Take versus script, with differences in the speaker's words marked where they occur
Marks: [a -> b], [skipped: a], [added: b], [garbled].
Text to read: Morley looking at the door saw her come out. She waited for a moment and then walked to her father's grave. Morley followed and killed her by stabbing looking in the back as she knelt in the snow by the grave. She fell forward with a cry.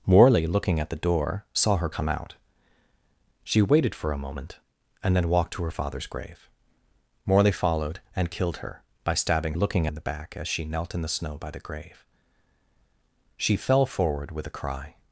Morley looking at the door saw her come out. She waited for a moment and then walked to her father's grave. Morley followed and killed her by stabbing looking in the back as she knelt in the snow by the grave. She fell forward with a cry.